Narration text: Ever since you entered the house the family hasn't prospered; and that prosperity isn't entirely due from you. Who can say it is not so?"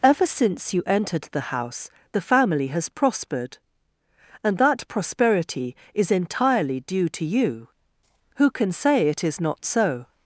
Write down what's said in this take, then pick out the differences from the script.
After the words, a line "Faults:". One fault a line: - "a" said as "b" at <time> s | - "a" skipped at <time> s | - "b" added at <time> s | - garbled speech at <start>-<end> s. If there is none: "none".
Ever since you entered the house the family has prospered; and that prosperity is entirely due to you. Who can say it is not so?"
Faults:
- "hasn't" said as "has" at 2.7 s
- "isn't" said as "is" at 5.9 s
- "from" said as "to" at 7.1 s